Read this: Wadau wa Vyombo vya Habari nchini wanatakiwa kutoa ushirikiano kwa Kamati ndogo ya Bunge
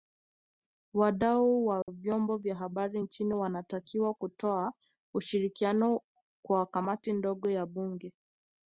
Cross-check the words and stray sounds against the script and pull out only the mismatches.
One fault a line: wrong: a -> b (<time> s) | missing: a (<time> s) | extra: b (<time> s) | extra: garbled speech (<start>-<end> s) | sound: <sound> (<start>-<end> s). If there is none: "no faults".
sound: dropout (1.8-1.9 s)